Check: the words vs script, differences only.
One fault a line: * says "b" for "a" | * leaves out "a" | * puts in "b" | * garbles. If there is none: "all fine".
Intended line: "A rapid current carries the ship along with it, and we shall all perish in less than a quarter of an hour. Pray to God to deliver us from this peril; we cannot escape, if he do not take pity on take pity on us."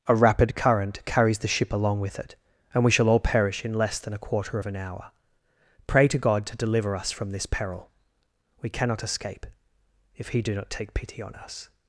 * leaves out "take pity on"